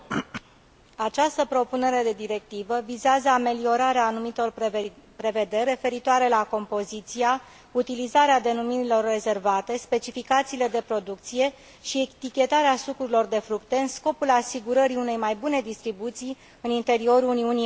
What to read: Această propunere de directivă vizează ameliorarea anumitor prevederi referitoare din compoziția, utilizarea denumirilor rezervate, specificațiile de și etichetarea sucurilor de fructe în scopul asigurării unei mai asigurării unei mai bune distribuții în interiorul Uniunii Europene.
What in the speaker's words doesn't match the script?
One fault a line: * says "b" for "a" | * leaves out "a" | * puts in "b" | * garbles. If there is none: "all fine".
* says "la" for "din"
* puts in "producție"
* leaves out "asigurării unei mai"